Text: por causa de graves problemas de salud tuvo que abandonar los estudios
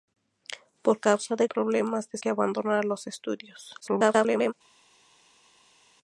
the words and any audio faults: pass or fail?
fail